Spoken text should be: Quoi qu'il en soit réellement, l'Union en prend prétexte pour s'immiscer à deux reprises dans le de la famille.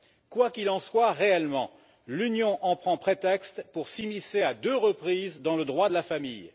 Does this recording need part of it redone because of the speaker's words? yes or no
yes